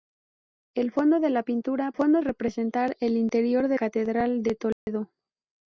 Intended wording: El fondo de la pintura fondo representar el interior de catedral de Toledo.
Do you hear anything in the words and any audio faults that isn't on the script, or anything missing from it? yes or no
yes